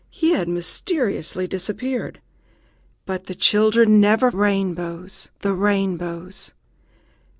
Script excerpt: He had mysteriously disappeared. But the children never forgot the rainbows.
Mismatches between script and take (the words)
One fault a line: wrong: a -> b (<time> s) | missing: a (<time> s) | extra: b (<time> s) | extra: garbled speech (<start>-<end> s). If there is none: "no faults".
wrong: forgot -> rainbows (4.3 s)